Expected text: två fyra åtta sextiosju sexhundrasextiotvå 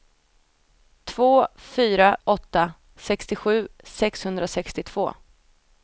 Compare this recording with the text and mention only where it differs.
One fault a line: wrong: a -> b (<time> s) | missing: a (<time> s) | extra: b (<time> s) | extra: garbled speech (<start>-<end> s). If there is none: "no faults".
no faults